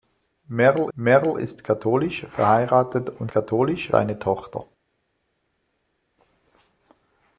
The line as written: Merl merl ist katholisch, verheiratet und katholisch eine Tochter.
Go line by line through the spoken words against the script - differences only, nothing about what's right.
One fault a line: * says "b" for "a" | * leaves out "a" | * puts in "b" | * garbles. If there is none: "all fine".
all fine